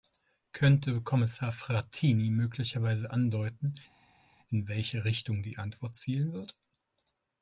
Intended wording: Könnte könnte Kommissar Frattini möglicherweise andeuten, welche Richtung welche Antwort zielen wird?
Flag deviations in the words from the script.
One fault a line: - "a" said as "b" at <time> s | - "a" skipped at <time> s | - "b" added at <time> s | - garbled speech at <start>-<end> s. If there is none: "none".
- "könnte" skipped at 1.0 s
- "in" added at 4.5 s
- "welche" said as "die" at 5.4 s